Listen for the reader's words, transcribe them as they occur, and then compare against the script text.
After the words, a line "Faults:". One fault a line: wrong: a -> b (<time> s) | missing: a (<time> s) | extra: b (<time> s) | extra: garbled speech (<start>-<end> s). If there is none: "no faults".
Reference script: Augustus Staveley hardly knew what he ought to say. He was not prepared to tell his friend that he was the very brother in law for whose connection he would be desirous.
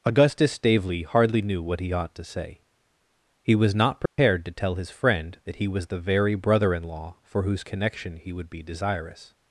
Augustus Staveley hardly knew what he ought to say. He was not prepared to tell his friend that he was the very brother in law for whose connection he would be desirous.
Faults:
no faults